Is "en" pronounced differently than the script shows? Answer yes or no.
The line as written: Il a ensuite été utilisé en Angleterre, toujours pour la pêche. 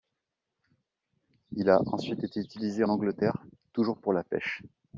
yes